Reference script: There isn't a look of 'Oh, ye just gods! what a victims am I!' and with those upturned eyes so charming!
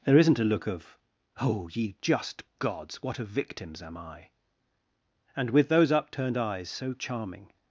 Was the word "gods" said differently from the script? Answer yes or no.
no